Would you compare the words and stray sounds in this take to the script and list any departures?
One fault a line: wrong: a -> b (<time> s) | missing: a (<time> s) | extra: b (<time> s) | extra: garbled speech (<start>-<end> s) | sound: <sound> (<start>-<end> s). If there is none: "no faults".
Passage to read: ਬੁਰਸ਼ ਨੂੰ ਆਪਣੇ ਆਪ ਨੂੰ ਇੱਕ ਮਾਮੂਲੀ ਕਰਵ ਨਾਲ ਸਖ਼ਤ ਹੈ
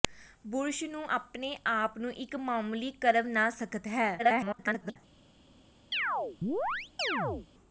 extra: garbled speech (4.2-5.0 s)
sound: chirp (5.9-7.5 s)